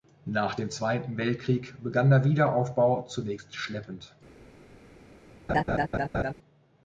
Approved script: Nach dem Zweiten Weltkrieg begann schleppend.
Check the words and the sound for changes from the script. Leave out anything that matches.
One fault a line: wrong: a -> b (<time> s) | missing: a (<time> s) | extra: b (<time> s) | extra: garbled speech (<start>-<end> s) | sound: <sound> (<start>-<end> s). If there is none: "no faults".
extra: der Wiederaufbau zunächst (2.1 s)
sound: laugh (5.5-6.3 s)